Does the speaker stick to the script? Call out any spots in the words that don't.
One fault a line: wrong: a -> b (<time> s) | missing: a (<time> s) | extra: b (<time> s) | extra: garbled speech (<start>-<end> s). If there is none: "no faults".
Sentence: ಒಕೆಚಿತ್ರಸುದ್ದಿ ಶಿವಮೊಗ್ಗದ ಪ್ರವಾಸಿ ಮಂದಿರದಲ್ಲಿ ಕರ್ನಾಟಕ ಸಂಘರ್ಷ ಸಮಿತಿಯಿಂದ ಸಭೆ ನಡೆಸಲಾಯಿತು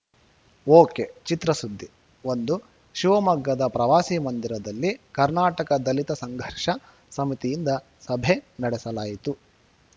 extra: ಒಂದು (2.2 s)
extra: ದಲಿತ (5.8 s)